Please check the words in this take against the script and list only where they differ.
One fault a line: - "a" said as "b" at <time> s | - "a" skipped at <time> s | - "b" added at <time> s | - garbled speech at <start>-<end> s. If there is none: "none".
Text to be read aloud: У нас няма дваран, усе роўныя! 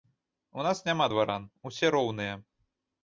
none